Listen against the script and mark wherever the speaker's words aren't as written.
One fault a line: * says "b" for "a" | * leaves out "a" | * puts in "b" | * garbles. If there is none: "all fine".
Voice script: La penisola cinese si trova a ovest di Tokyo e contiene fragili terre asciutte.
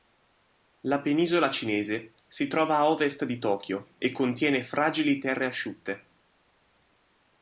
all fine